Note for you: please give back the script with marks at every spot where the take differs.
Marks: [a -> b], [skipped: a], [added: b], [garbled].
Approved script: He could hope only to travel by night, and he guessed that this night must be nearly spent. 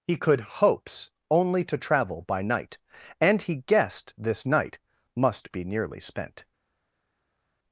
He could [hope -> hopes] only to travel by night, and he guessed [skipped: that] this night must be nearly spent.